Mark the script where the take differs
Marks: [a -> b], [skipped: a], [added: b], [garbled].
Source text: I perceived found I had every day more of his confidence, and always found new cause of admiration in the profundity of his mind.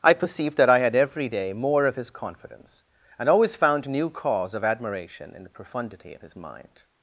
I perceived [found -> that] I had every day more of his confidence, and always found new cause of admiration in the profundity of his mind.